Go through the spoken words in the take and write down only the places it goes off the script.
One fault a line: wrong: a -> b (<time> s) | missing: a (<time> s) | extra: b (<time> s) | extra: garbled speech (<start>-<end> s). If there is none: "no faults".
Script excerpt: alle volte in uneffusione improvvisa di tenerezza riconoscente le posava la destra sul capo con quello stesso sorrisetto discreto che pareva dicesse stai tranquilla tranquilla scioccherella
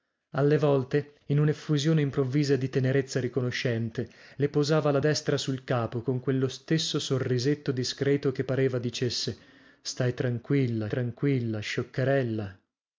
no faults